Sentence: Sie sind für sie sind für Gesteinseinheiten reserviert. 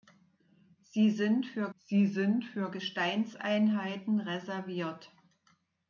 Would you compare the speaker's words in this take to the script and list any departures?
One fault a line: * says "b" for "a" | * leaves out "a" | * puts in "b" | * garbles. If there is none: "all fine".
all fine